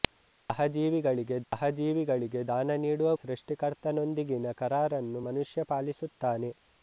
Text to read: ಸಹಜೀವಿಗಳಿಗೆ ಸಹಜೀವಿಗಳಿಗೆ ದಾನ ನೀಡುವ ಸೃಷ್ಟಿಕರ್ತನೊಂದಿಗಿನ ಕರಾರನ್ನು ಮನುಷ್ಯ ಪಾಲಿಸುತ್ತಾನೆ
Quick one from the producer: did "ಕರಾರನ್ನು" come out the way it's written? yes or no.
yes